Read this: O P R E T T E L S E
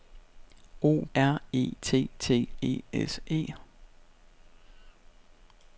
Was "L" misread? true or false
true